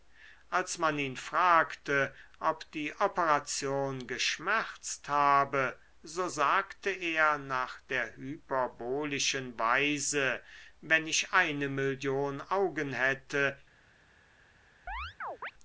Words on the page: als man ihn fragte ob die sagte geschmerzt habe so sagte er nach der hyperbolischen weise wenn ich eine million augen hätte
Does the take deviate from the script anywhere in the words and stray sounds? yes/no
yes